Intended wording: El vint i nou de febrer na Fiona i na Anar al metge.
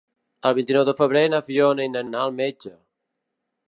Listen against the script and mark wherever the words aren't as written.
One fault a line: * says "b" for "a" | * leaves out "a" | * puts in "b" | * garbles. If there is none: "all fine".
all fine